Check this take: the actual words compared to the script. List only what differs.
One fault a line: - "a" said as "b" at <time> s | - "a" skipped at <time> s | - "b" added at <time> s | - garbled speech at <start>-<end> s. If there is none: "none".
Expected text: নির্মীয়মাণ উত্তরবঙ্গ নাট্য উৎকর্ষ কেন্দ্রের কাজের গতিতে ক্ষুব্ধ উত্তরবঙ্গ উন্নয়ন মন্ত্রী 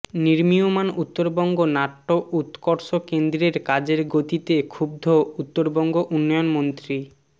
none